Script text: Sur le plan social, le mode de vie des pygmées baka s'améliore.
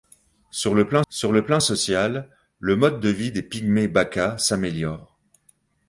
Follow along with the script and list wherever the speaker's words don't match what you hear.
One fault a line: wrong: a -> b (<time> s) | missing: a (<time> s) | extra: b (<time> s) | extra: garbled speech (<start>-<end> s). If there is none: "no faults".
extra: sur le plan (1.1 s)